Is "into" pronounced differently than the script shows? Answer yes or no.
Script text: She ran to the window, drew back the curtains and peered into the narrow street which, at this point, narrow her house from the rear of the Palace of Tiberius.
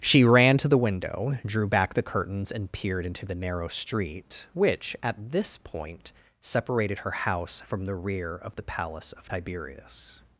no